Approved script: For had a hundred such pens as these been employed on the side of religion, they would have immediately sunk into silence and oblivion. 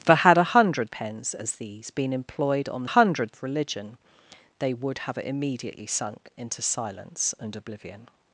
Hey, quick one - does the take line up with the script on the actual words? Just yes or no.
no